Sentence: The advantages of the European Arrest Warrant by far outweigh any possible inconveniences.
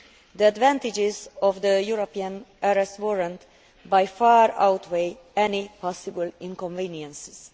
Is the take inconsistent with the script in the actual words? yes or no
no